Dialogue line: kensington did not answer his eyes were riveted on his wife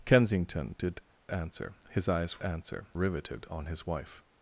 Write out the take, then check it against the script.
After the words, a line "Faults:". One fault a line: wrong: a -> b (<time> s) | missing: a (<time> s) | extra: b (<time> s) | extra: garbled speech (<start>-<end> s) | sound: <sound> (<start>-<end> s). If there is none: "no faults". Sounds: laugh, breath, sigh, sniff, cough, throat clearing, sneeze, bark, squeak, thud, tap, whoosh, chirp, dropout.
kensington did answer his eyes answer riveted on his wife
Faults:
missing: not (1.0 s)
wrong: were -> answer (2.4 s)